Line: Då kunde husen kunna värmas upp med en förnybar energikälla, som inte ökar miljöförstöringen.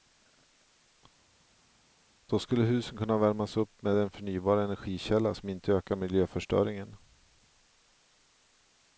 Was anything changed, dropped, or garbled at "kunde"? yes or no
yes